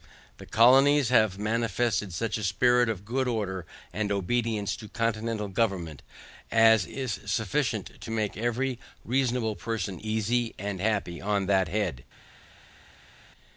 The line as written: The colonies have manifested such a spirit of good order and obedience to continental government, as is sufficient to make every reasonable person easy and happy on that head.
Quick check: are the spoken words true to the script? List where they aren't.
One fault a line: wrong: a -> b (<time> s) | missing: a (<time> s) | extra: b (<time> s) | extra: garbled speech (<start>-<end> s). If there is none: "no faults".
no faults